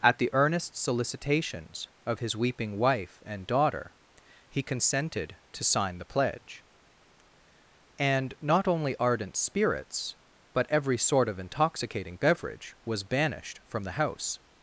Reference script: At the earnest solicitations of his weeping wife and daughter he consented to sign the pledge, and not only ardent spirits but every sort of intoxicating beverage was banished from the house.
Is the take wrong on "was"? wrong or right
right